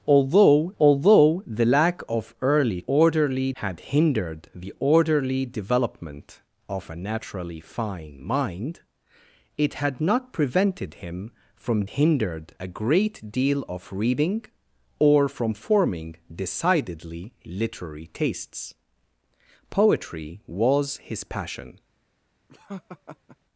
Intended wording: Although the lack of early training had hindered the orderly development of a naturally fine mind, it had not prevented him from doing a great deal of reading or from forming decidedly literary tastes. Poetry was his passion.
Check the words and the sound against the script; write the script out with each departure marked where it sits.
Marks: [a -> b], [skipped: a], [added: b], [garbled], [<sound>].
Although [added: although] the lack of early [training -> orderly] had hindered the orderly development of a naturally fine mind, it had not prevented him from [doing -> hindered] a great deal of reading or from forming decidedly literary tastes. Poetry was his passion. [laugh]